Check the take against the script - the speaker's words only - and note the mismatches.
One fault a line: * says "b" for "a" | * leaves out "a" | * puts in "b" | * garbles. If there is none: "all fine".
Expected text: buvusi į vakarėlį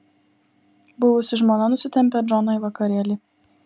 * puts in "žmona nusitempia džoną"